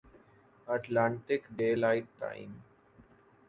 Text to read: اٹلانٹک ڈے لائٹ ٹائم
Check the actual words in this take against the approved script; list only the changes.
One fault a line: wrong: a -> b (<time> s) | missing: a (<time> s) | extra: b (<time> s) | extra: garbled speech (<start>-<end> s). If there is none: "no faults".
no faults